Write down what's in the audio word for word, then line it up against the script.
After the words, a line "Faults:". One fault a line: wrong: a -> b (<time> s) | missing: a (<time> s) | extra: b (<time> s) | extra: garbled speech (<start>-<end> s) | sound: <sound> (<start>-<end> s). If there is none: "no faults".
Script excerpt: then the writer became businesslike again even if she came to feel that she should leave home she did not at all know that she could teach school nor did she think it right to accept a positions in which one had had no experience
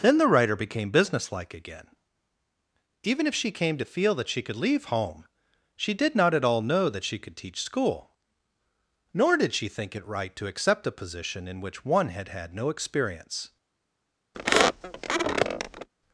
then the writer became businesslike again even if she came to feel that she could leave home she did not at all know that she could teach school nor did she think it right to accept a position in which one had had no experience
Faults:
wrong: should -> could (4.4 s)
wrong: positions -> position (10.9 s)
sound: squeak (14.3-15.9 s)